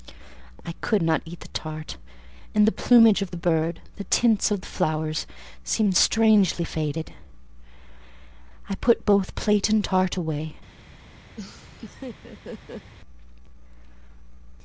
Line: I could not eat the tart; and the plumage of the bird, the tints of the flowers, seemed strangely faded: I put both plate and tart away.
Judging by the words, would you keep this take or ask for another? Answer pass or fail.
pass